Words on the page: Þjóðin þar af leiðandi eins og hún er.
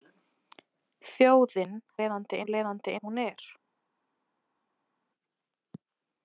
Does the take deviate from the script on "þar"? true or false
true